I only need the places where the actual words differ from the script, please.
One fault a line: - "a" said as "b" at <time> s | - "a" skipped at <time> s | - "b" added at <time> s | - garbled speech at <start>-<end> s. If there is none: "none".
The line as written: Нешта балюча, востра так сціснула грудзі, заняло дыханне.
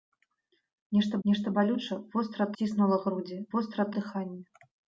- "нешта" added at 1.3 s
- "так" skipped at 2.5 s
- "заняло" said as "востра" at 3.6 s